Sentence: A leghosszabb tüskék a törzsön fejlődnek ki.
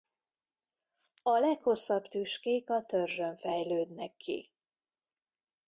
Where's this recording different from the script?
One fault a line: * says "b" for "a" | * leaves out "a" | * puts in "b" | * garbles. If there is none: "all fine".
all fine